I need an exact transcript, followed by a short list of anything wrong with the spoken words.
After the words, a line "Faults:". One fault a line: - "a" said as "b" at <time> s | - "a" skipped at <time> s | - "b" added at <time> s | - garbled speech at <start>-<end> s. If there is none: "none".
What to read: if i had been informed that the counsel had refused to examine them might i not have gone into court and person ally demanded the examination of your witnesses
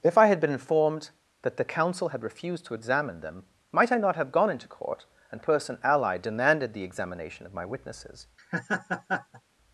if i had been informed that the counsel had refused to examine them might i not have gone into court and person ally demanded the examination of my witnesses
Faults:
- "your" said as "my" at 7.5 s